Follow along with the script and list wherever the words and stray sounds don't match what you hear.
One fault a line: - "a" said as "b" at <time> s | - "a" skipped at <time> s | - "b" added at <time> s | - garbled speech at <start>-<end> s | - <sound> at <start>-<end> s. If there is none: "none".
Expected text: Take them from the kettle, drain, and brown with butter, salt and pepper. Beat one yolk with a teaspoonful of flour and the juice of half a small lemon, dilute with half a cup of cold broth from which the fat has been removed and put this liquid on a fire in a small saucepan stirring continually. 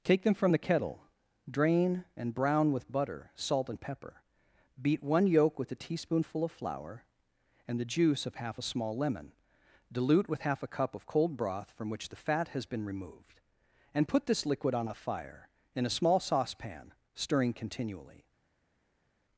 none